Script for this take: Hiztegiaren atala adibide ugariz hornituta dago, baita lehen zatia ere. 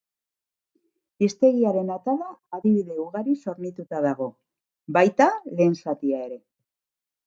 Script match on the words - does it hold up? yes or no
yes